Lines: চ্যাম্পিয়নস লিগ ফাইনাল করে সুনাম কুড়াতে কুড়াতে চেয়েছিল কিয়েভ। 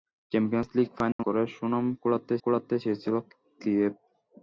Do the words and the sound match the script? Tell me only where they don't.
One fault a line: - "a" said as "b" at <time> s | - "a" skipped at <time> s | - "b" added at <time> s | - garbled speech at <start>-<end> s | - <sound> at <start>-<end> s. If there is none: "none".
- dropout at 1.1-1.2 s